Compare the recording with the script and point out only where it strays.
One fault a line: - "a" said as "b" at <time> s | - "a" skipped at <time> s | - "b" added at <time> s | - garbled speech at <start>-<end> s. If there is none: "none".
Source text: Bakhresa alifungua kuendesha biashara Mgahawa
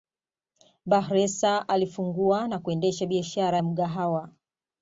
- "na" added at 2.5 s
- "ya" added at 3.5 s